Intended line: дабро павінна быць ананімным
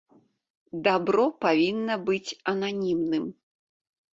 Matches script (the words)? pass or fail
pass